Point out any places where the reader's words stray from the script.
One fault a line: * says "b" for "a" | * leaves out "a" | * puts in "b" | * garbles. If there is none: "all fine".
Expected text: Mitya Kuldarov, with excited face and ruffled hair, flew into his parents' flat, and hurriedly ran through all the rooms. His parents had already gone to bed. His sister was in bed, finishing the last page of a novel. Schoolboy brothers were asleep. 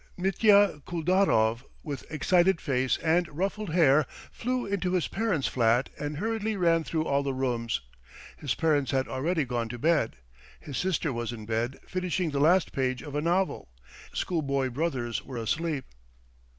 all fine